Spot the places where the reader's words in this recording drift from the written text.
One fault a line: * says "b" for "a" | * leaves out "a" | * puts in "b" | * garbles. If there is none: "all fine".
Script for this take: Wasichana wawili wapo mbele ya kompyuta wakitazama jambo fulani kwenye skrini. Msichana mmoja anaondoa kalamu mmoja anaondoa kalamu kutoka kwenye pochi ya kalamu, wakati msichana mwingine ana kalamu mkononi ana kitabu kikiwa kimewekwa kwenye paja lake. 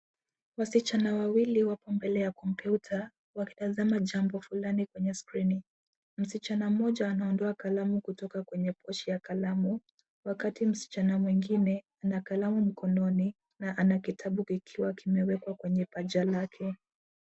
* leaves out "mmoja anaondoa kalamu"
* puts in "na"